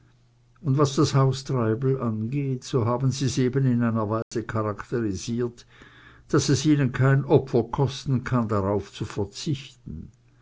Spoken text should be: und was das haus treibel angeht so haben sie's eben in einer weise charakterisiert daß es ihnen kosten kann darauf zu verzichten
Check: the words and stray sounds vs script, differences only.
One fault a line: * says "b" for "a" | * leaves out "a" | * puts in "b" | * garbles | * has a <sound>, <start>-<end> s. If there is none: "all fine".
* has a dropout, 4.2-4.3 s
* puts in "kein opfer"